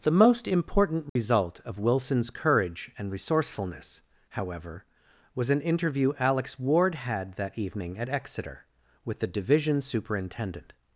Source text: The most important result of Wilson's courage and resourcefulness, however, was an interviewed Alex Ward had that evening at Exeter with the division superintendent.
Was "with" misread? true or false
false